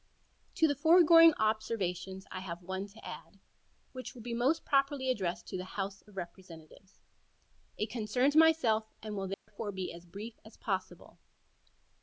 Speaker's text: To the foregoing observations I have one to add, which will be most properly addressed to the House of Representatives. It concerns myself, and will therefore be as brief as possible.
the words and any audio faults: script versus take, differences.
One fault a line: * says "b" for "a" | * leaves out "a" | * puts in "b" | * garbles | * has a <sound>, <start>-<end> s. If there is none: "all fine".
* has a dropout, 9.3-9.5 s